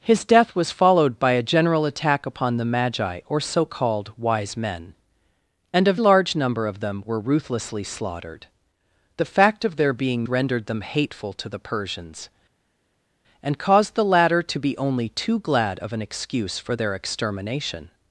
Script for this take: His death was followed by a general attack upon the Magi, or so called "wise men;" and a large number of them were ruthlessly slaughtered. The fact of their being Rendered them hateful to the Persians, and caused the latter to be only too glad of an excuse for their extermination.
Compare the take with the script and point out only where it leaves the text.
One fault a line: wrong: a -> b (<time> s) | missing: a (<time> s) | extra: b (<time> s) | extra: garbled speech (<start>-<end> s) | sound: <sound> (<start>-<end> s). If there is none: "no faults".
no faults